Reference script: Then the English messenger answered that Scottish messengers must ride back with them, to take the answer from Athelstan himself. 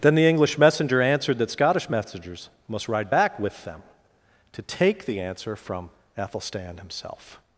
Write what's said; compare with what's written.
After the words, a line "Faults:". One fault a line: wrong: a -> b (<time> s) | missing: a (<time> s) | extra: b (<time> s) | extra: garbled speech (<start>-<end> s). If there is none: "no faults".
Then the English messenger answered that Scottish messengers must ride back with them, to take the answer from Athelstan himself.
Faults:
no faults